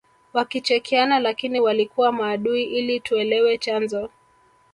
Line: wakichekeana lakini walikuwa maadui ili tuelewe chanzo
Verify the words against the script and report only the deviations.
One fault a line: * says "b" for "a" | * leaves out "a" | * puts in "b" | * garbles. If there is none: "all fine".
all fine